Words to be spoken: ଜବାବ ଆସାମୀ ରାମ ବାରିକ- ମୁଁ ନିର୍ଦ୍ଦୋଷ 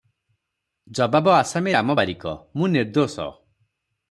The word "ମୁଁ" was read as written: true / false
true